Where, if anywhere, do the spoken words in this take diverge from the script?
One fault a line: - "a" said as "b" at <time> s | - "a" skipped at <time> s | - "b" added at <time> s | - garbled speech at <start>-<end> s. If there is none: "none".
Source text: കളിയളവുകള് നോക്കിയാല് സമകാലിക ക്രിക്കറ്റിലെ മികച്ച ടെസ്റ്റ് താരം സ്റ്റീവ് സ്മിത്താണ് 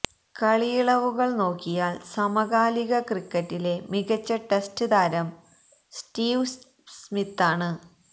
none